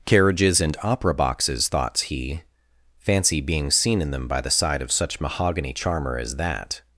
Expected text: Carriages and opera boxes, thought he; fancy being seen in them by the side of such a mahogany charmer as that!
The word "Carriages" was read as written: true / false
true